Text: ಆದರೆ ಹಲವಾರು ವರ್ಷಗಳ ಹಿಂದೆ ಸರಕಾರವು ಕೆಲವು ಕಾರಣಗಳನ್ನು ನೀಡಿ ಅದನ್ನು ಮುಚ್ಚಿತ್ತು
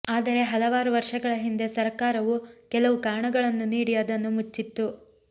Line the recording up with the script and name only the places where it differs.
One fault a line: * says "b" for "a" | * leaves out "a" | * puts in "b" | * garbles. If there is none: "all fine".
all fine